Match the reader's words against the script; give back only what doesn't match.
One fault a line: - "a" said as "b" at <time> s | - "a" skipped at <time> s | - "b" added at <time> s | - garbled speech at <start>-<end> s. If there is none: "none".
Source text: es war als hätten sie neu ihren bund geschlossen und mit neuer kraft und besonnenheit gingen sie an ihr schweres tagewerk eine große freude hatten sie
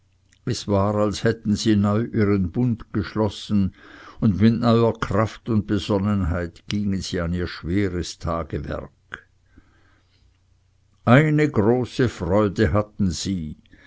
none